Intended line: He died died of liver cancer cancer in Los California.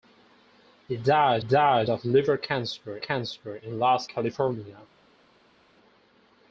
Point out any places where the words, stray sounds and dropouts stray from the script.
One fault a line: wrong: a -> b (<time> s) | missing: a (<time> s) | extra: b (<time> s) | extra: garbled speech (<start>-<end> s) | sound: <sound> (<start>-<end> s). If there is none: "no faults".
no faults